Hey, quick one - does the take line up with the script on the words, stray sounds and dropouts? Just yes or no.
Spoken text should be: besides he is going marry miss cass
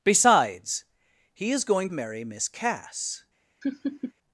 no